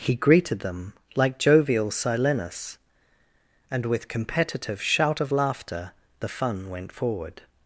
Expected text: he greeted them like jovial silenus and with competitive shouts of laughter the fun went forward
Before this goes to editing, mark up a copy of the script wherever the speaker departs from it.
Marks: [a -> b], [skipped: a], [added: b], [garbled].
he greeted them like jovial silenus and with competitive [shouts -> shout] of laughter the fun went forward